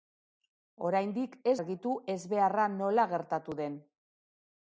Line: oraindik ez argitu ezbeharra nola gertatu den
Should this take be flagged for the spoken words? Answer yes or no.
no